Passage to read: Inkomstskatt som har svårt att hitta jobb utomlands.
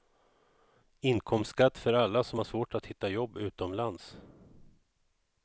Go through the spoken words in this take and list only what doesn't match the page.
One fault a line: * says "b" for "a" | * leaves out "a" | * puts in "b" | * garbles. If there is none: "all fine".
* puts in "för alla"